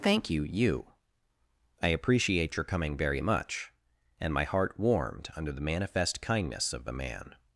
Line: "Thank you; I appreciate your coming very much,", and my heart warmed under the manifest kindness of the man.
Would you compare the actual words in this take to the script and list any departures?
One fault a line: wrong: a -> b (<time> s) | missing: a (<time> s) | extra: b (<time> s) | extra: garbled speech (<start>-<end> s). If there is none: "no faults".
extra: you (0.4 s)